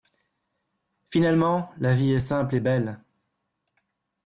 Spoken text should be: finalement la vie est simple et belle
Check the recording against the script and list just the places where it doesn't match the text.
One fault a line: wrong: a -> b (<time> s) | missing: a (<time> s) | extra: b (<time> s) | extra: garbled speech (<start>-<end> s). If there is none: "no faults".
no faults